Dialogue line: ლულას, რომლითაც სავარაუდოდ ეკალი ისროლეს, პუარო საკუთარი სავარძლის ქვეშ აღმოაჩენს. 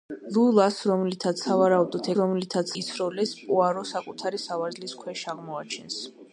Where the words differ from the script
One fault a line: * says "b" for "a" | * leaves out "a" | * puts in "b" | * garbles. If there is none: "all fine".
* says "რომლითაც" for "ეკალი"